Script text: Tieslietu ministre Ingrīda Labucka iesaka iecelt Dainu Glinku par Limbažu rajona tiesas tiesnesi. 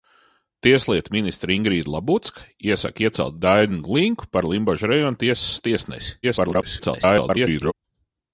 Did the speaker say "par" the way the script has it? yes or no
yes